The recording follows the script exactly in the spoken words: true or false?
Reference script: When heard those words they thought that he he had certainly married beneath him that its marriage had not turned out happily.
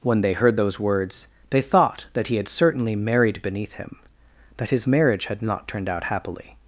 false